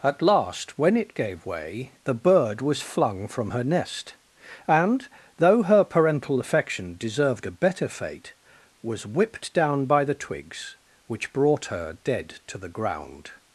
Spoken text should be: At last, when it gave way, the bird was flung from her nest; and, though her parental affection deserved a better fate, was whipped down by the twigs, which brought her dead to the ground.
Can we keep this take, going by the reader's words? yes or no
yes